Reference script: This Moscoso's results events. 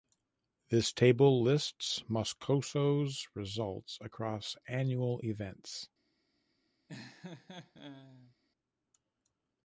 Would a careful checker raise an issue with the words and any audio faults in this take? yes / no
yes